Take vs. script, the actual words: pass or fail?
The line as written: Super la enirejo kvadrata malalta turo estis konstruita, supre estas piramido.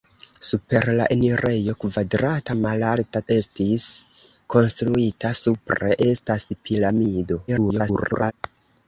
fail